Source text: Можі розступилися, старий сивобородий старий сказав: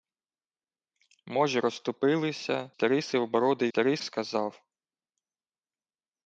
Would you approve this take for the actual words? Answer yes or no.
yes